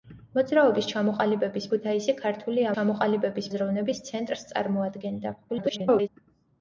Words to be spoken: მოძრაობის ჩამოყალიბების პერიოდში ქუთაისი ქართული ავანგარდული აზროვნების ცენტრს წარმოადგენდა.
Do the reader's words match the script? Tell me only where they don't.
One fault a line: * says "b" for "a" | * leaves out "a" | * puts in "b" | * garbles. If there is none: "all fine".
* leaves out "პერიოდში"
* says "ჩამოყალიბების" for "ავანგარდული"
* garbles